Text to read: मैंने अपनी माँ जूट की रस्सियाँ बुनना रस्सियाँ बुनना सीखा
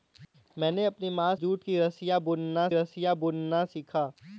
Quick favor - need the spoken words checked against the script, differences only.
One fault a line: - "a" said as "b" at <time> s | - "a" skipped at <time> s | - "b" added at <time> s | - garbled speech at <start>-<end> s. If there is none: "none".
none